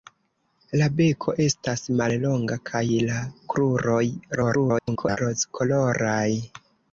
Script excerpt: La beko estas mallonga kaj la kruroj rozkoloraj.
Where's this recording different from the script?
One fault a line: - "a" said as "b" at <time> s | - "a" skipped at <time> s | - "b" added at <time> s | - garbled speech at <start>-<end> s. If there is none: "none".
- garbled speech at 4.4-5.2 s